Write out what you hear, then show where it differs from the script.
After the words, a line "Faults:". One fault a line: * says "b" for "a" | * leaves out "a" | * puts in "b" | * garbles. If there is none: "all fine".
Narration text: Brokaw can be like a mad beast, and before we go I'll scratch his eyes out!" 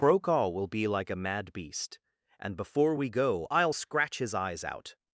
Brokaw will be like a mad beast, and before we go I'll scratch his eyes out!"
Faults:
* says "will" for "can"